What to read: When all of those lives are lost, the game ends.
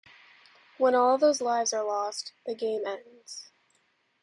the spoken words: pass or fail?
pass